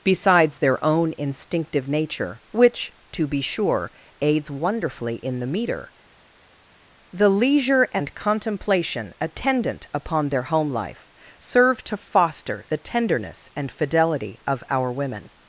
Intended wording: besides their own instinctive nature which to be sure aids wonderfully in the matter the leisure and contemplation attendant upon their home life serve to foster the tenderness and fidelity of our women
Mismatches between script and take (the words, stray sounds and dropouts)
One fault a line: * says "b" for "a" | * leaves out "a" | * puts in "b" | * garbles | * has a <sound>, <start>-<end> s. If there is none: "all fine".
* says "meter" for "matter"